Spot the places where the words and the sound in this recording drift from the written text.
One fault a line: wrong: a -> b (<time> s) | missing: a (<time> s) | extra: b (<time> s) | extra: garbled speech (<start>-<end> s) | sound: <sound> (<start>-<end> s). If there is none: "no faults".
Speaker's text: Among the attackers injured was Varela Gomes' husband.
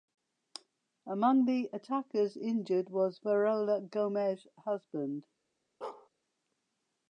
sound: bark (5.8-6.1 s)